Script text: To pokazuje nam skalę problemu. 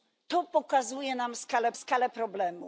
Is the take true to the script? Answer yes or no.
no